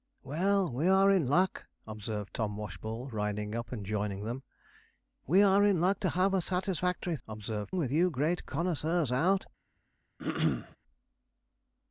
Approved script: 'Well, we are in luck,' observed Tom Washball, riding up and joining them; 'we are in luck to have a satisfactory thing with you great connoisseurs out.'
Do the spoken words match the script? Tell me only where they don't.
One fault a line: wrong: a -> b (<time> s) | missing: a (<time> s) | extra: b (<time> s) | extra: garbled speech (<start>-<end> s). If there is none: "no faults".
wrong: thing -> observed (7.3 s)